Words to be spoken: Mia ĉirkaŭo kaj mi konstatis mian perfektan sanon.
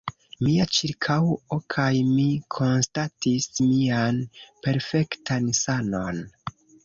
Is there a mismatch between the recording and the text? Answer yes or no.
no